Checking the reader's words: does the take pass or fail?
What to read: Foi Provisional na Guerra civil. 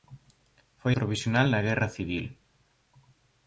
pass